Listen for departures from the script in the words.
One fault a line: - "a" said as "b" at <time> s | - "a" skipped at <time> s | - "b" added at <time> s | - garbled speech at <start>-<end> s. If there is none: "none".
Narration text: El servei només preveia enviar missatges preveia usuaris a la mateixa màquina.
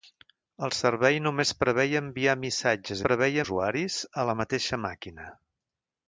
none